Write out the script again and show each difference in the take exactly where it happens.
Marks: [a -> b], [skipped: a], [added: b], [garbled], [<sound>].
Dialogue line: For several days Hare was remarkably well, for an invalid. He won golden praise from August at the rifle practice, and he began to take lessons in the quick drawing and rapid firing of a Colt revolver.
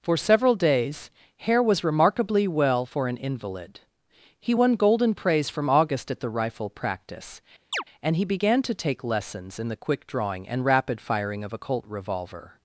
For several days Hare was remarkably well, for an invalid. He won golden praise from August at the rifle practice, [chirp] and he began to take lessons in the quick drawing and rapid firing of a Colt revolver.